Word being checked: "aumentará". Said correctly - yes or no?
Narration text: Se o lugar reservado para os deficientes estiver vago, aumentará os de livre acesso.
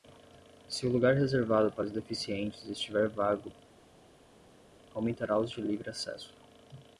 yes